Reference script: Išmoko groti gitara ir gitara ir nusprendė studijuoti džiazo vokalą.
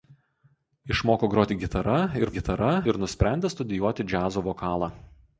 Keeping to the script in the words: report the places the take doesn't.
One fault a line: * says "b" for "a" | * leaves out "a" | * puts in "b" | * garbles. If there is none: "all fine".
all fine